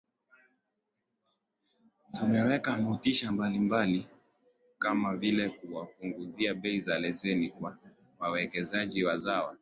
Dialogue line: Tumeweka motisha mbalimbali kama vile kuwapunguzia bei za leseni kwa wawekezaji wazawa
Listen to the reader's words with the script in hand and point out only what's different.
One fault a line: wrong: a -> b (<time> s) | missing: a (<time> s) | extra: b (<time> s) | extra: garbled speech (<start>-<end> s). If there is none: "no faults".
no faults